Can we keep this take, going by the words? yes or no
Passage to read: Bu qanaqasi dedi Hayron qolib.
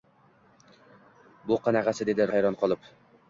yes